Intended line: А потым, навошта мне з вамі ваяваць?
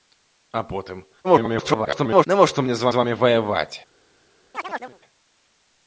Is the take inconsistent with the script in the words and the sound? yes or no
yes